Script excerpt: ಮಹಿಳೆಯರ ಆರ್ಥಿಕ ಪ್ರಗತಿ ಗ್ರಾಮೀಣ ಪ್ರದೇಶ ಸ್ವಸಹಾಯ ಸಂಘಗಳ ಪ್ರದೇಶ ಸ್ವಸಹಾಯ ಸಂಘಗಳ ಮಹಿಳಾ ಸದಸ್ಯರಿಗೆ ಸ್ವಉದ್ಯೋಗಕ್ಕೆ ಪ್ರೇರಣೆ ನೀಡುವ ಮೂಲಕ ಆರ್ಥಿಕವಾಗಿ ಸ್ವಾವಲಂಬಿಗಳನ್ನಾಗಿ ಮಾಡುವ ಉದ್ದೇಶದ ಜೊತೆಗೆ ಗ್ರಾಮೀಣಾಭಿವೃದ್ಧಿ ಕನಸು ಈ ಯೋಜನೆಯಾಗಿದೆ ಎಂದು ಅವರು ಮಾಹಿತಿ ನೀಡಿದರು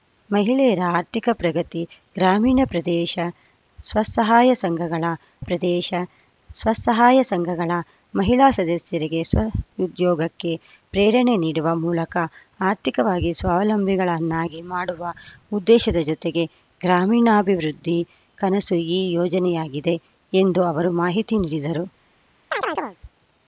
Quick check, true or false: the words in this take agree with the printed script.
true